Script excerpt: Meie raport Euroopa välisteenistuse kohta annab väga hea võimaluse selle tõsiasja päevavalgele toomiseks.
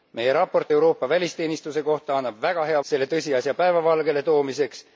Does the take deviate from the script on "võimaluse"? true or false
true